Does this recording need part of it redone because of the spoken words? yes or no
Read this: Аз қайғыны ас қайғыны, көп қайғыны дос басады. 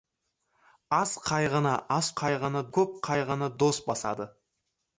no